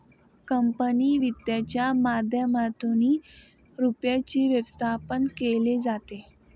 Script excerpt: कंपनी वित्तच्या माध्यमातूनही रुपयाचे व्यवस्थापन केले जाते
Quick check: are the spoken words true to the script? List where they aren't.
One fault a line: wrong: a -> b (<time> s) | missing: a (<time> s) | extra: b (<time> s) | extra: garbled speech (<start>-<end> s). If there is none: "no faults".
no faults